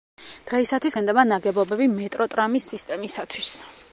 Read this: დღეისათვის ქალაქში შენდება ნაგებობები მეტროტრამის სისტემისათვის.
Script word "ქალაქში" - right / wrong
wrong